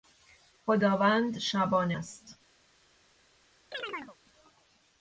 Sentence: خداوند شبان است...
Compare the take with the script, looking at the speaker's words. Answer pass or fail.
pass